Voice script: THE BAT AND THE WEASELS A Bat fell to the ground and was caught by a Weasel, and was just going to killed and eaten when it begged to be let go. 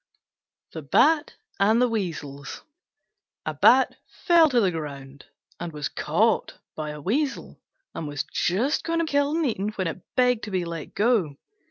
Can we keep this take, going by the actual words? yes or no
yes